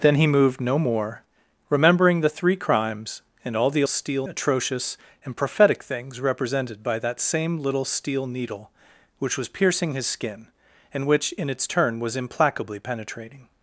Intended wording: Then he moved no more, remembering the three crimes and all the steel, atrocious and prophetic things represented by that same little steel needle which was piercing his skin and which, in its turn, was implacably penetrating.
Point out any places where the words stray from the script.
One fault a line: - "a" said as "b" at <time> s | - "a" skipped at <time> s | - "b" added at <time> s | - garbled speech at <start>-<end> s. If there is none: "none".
none